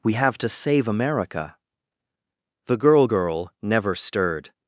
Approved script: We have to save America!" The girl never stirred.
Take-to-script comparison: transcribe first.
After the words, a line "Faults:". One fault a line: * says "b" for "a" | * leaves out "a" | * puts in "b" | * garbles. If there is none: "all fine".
We have to save America!" The girl girl never stirred.
Faults:
* puts in "girl"